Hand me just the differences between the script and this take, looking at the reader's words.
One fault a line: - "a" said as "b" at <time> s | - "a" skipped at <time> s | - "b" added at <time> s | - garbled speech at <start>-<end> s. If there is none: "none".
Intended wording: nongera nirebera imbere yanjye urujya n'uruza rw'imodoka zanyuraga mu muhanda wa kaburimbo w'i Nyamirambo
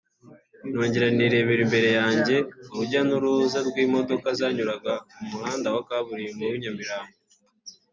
none